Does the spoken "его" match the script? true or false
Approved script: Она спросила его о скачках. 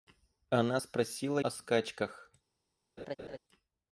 false